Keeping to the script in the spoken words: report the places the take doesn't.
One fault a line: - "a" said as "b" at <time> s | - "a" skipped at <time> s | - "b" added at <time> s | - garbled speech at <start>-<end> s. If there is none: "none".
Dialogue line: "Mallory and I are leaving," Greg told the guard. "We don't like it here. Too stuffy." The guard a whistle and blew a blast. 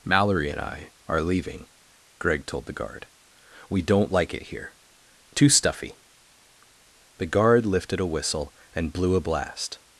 - "lifted" added at 7.7 s